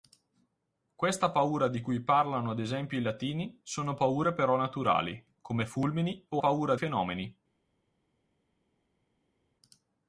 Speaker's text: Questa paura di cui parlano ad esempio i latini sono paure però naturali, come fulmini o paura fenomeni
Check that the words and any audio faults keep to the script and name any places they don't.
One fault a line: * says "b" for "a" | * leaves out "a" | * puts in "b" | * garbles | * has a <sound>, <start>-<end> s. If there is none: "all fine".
all fine